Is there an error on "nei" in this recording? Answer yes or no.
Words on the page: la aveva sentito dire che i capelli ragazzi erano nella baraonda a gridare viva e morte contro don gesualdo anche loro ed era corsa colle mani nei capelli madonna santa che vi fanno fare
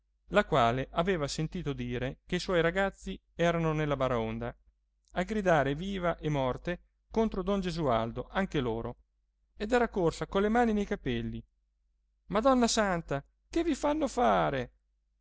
no